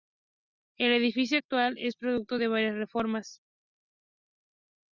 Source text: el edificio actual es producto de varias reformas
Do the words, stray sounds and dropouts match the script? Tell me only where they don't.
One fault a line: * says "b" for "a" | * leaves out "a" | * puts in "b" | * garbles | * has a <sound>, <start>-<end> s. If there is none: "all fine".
all fine